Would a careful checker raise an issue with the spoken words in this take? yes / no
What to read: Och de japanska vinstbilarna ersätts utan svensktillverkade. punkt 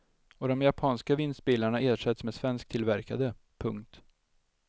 yes